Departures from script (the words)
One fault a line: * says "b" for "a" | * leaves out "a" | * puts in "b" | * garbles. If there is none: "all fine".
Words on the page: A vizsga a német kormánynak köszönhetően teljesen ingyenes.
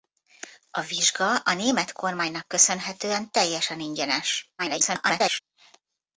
* garbles